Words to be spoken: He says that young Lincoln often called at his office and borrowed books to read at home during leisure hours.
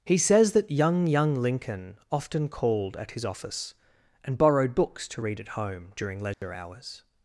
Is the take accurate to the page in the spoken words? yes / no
no